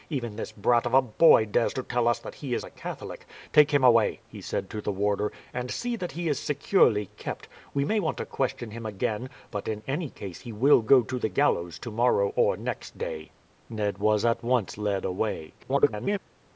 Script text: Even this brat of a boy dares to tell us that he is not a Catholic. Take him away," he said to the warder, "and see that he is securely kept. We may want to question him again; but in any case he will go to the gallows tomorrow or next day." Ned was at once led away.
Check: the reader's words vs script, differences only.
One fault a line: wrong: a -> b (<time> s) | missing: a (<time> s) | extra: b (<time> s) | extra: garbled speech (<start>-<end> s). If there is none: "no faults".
missing: not (2.7 s)
extra: garbled speech (15.6-16.2 s)